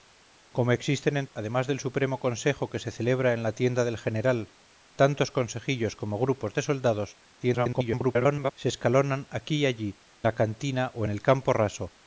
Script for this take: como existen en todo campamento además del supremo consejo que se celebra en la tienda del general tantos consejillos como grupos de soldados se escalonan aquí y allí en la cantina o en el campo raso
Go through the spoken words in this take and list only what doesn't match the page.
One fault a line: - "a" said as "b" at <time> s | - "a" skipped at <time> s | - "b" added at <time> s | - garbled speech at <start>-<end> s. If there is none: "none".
- "todo campamento" skipped at 1.3 s
- garbled speech at 7.4-8.5 s
- "en" skipped at 10.0 s